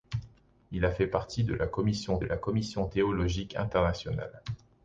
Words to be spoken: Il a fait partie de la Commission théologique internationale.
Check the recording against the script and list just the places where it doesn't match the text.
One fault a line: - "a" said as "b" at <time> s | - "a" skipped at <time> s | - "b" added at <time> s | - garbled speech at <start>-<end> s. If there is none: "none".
- "la Commission" added at 2.2 s